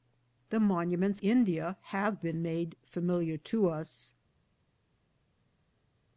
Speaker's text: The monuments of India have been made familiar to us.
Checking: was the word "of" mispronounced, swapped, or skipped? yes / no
yes